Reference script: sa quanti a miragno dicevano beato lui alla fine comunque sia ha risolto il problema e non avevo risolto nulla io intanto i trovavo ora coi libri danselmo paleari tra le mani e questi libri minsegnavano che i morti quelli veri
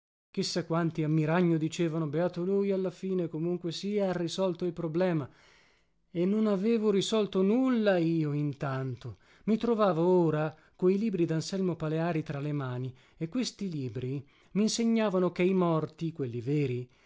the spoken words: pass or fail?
pass